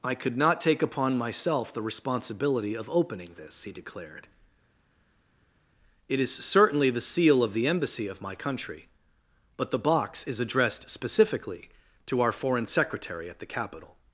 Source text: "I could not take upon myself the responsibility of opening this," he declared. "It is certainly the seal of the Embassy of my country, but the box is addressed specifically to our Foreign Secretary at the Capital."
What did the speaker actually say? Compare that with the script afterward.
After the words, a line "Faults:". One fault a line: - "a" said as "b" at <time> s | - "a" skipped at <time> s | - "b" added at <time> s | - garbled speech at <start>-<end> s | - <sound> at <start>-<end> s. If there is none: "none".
"I could not take upon myself the responsibility of opening this," he declared. "It is certainly the seal of the Embassy of my country, but the box is addressed specifically to our Foreign Secretary at the Capital."
Faults:
none